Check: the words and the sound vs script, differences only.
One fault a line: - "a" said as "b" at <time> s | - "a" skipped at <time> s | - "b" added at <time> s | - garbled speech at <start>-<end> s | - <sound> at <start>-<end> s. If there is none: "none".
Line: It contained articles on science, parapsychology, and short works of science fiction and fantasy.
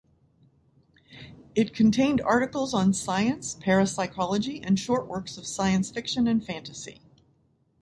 none